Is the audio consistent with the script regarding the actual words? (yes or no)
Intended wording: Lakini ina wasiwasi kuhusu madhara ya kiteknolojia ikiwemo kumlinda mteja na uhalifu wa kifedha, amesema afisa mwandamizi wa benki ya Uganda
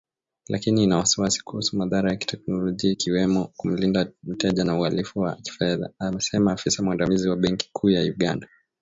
no